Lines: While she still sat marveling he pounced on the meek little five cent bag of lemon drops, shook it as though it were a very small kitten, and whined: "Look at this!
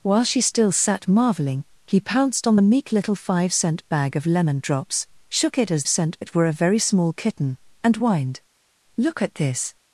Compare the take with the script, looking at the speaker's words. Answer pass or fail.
fail